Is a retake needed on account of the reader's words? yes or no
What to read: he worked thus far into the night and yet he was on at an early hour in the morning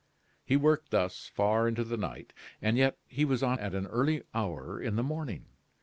no